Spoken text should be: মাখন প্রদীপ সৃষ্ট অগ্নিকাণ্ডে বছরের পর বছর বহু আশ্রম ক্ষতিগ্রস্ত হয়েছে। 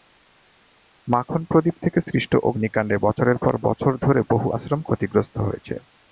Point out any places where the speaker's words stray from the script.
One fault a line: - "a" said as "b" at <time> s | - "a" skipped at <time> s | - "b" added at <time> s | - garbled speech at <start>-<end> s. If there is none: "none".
- "থেকে" added at 1.8 s
- "ধরে" added at 4.0 s